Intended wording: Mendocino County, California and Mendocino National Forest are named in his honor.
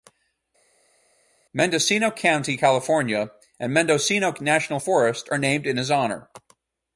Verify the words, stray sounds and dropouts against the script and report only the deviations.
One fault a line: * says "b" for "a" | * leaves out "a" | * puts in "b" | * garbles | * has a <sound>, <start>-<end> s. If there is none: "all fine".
all fine